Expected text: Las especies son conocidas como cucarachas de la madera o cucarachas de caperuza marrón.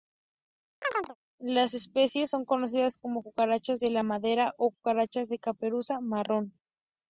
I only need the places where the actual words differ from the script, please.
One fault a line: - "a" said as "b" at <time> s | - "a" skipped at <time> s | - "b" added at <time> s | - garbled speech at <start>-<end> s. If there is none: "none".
none